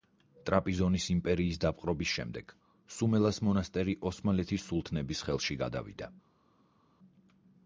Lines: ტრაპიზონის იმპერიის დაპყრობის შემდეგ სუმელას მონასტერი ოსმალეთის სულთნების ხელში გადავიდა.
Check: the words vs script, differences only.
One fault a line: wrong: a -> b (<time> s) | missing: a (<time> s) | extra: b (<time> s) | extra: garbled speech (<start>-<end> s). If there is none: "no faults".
no faults